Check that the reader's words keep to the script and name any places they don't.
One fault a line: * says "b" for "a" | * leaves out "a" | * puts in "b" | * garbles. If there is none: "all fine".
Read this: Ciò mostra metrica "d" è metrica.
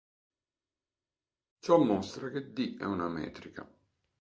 * says "che" for "metrica"
* puts in "una"